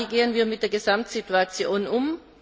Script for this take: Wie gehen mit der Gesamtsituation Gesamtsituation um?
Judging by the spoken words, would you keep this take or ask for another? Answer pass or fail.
fail